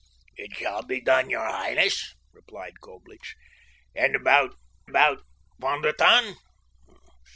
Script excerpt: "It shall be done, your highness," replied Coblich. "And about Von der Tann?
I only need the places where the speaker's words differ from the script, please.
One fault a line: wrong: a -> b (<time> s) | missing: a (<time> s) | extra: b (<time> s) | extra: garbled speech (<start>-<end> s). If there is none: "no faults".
extra: about (4.8 s)